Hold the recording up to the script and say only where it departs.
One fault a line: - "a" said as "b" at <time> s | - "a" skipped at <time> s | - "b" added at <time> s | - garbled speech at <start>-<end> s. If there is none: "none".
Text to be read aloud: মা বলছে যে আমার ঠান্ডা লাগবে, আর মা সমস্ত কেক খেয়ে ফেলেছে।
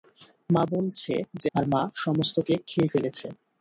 - "আমার ঠান্ডা লাগবে" skipped at 1.5 s